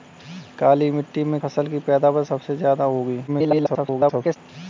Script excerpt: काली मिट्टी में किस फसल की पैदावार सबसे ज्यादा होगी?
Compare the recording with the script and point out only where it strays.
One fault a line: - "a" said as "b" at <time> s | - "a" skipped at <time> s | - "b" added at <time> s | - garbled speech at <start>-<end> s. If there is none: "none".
- "किस" skipped at 1.4 s
- garbled speech at 3.3-4.4 s